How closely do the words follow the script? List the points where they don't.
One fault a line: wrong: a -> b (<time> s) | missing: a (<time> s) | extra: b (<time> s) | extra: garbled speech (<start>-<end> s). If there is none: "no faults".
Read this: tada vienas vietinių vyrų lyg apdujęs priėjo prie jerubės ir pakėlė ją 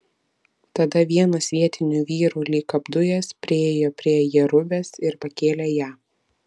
no faults